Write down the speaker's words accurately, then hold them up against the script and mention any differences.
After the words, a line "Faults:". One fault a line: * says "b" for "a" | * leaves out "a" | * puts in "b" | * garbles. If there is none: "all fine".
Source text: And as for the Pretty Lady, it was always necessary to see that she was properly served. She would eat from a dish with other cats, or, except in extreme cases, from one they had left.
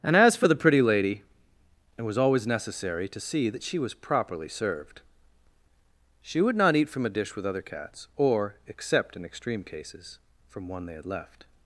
And as for the Pretty Lady, it was always necessary to see that she was properly served. She would not eat from a dish with other cats, or, except in extreme cases, from one they had left.
Faults:
* puts in "not"